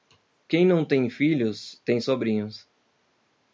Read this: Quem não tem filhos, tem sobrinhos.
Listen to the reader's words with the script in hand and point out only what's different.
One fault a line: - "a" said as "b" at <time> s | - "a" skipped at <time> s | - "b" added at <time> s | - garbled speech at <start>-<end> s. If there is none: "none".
none